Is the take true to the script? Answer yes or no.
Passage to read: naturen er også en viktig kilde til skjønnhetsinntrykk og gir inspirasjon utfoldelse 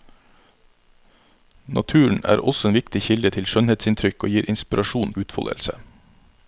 yes